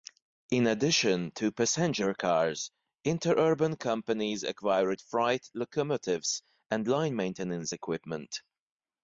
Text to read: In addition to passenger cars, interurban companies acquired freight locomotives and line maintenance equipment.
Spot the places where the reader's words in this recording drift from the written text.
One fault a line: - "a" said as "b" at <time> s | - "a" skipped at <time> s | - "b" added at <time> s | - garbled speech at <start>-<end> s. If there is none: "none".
none